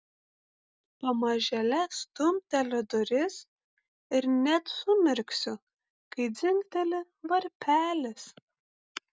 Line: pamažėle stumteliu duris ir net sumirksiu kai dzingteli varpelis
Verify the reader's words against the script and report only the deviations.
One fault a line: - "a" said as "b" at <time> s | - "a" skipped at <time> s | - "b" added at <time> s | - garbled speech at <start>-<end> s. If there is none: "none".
none